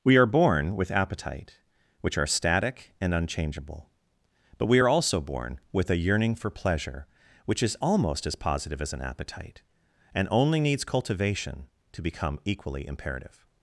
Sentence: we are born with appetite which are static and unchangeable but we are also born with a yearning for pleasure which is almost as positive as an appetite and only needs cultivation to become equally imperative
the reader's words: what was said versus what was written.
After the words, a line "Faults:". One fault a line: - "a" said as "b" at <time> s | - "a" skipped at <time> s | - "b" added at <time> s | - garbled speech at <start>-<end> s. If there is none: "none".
we are born with appetite which are static and unchangeable but we are also born with a yearning for pleasure which is almost as positive as an appetite and only needs cultivation to become equally imperative
Faults:
none